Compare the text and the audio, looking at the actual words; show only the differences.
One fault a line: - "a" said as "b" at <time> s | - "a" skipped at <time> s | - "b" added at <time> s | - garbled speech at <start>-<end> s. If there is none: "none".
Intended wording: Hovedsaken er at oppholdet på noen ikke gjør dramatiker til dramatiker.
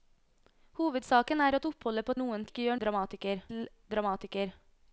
none